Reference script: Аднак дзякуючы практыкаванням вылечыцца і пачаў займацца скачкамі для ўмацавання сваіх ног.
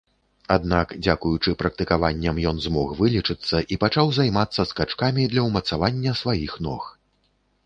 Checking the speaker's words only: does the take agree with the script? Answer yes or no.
no